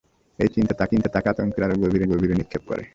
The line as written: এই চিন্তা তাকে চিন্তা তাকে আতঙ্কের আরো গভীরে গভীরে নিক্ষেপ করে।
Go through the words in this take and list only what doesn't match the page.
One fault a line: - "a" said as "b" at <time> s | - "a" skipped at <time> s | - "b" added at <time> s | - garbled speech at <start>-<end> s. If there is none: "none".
none